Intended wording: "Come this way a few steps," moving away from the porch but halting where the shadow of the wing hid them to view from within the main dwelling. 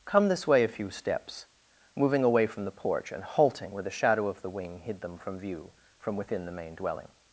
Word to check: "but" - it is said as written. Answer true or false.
false